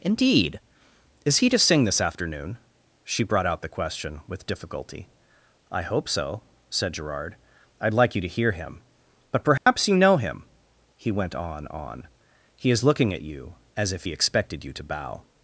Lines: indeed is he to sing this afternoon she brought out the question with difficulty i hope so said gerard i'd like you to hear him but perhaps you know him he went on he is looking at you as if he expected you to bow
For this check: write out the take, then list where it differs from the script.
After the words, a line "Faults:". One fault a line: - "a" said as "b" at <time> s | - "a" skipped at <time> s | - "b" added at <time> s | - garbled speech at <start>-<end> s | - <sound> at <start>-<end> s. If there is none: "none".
indeed is he to sing this afternoon she brought out the question with difficulty i hope so said gerard i'd like you to hear him but perhaps you know him he went on on he is looking at you as if he expected you to bow
Faults:
- dropout at 9.6-9.7 s
- "on" added at 11.7 s